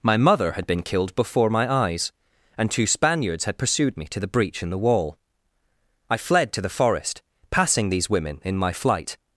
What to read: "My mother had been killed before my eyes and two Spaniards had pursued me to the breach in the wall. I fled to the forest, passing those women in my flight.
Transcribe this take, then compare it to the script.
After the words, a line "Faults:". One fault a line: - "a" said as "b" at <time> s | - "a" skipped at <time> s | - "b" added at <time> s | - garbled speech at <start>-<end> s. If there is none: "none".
"My mother had been killed before my eyes and two Spaniards had pursued me to the breach in the wall. I fled to the forest, passing these women in my flight.
Faults:
- "those" said as "these" at 7.9 s